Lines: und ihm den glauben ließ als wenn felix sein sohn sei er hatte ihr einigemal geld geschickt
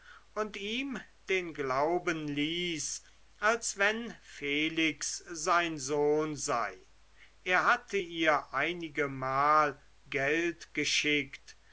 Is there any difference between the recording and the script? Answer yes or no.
no